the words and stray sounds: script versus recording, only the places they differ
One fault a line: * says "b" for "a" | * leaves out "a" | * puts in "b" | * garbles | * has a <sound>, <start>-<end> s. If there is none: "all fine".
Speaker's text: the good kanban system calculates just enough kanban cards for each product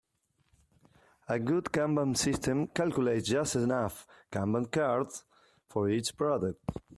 * says "a" for "the"